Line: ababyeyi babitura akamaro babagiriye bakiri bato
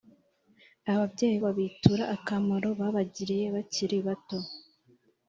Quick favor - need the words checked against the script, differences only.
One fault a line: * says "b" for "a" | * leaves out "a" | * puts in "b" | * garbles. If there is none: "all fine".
all fine